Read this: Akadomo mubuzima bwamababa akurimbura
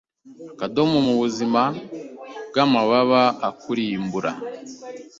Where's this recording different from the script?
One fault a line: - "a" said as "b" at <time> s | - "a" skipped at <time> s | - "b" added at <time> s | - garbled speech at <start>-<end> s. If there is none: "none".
none